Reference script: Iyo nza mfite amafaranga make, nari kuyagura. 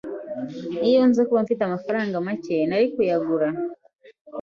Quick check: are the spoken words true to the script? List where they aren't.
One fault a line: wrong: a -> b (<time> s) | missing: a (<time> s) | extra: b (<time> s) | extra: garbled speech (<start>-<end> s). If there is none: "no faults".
extra: kuba (1.3 s)